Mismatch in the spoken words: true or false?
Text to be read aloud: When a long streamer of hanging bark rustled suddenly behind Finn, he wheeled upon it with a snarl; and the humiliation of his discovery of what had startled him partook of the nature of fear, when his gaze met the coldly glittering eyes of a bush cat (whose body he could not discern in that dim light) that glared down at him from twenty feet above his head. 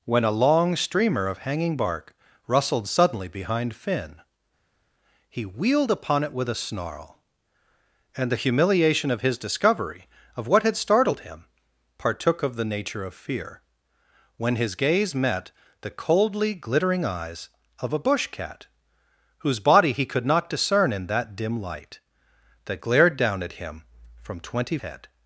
true